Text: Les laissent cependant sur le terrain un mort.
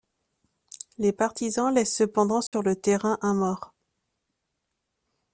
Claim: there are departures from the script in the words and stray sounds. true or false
true